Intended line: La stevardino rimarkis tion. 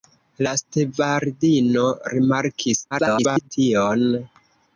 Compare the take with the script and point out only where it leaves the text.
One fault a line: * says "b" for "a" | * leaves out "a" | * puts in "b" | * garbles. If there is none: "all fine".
* garbles